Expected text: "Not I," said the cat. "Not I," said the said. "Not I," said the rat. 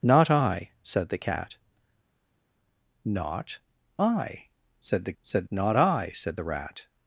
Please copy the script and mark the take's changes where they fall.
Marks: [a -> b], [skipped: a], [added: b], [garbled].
"Not I," said the cat. "Not I," said the said. "Not I," said the rat.